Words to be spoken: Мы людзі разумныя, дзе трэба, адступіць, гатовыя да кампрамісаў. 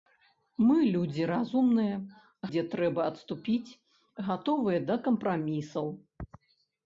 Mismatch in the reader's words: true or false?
false